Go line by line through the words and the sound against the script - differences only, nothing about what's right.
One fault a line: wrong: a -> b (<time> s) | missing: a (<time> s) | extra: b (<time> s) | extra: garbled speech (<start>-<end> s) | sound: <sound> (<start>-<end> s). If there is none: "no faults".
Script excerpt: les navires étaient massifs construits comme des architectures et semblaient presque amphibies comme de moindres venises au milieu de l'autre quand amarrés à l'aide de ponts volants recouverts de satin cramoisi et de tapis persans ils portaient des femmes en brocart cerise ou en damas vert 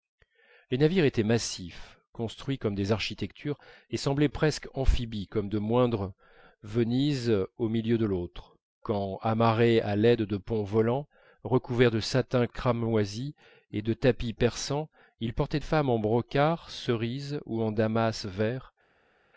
missing: des (15.6 s)